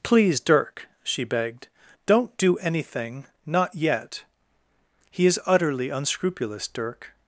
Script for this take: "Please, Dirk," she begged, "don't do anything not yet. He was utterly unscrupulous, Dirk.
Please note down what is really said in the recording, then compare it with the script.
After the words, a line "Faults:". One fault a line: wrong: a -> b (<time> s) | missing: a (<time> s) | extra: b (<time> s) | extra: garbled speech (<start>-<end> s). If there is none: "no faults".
"Please, Dirk," she begged, "don't do anything not yet. He is utterly unscrupulous, Dirk.
Faults:
wrong: was -> is (5.2 s)